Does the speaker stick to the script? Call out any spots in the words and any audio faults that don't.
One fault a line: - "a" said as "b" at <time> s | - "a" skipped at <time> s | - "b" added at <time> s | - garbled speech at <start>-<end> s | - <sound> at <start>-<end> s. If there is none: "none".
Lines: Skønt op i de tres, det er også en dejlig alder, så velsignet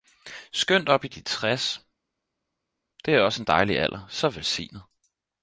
none